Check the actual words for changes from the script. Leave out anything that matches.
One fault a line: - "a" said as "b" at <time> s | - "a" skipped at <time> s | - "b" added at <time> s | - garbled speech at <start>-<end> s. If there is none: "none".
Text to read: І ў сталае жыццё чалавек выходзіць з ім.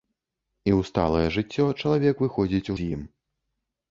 none